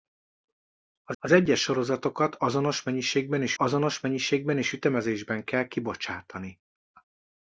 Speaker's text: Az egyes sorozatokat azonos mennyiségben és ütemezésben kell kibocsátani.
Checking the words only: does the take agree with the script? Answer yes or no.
no